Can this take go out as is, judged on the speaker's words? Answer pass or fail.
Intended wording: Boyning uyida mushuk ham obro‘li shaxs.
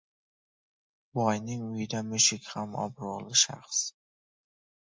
pass